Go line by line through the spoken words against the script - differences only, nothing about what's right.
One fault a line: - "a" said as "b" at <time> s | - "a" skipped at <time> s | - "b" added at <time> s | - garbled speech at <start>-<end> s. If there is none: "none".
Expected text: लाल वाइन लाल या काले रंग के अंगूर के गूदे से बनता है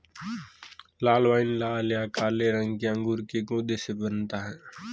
none